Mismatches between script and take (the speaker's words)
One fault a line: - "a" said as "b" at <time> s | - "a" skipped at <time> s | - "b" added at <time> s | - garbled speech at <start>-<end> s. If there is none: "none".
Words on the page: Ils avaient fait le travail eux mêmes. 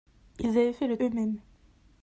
- "travail" skipped at 1.0 s